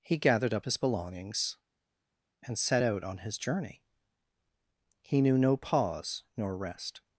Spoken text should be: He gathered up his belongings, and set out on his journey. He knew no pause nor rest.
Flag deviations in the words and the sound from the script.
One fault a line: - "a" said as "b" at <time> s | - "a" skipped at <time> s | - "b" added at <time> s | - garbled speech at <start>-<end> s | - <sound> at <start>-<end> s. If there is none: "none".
none